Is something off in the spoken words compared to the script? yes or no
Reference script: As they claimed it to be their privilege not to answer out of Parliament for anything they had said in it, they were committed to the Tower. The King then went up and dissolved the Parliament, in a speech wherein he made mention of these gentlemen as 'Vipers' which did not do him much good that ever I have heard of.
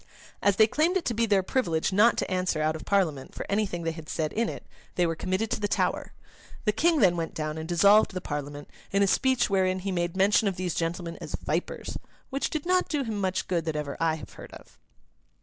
yes